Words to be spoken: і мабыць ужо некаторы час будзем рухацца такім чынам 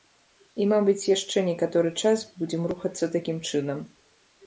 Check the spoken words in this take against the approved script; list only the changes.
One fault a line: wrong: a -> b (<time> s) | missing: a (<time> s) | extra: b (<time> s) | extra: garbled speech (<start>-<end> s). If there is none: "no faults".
wrong: ужо -> яшчэ (1.1 s)